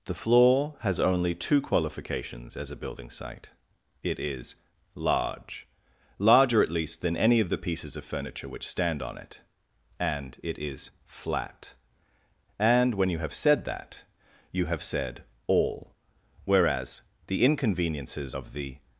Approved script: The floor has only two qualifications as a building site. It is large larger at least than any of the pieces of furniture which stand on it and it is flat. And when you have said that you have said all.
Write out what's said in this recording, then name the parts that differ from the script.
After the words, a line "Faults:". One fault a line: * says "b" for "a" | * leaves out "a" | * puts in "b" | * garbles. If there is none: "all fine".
The floor has only two qualifications as a building site. It is large larger at least than any of the pieces of furniture which stand on it and it is flat. And when you have said that you have said all. Whereas the inconveniences of the
Faults:
* puts in "Whereas the inconveniences of the"